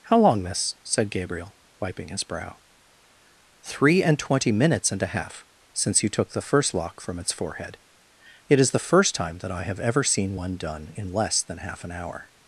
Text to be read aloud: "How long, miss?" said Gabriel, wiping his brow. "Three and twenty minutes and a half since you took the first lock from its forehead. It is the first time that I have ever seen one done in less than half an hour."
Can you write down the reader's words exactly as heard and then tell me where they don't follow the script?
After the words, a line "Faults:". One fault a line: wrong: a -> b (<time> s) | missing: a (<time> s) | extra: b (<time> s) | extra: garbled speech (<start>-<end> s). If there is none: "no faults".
"How long, miss?" said Gabriel, wiping his brow. "Three and twenty minutes and a half since you took the first lock from its forehead. It is the first time that I have ever seen one done in less than half an hour."
Faults:
no faults